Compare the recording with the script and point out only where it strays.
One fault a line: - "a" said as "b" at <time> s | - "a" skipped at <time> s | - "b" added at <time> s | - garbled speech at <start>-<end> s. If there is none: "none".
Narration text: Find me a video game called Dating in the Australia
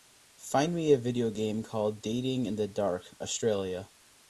- "Dark" added at 2.7 s